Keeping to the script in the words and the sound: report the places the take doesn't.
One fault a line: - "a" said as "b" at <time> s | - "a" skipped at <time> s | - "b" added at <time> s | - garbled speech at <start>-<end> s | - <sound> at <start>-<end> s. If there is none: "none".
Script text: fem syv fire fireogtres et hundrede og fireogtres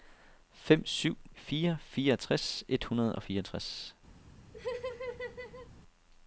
- laugh at 4.5-5.7 s